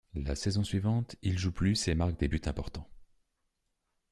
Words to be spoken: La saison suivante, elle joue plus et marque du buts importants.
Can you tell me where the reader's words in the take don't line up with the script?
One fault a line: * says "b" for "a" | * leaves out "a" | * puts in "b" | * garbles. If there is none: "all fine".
* says "il" for "elle"
* says "des" for "du"